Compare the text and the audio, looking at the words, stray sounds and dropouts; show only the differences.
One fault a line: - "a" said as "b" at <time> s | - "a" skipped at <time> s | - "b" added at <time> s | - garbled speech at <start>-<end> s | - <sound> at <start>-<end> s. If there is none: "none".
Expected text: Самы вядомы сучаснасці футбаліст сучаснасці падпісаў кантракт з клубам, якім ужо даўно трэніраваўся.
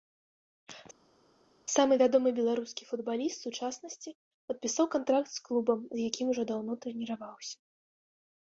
- "сучаснасці" said as "беларускі" at 2.4 s
- "з" added at 6.0 s